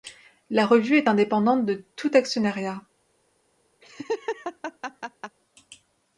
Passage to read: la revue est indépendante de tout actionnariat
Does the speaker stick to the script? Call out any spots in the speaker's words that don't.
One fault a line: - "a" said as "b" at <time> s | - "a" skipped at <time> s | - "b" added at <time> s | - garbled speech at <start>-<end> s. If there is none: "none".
none